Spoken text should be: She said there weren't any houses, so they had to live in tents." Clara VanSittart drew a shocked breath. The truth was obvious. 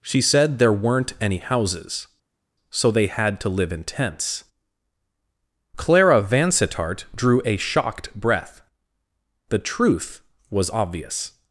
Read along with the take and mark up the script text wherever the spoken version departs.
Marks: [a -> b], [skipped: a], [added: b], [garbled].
She said there weren't any houses, so they had to live in tents." Clara VanSittart drew a shocked breath. The truth was obvious.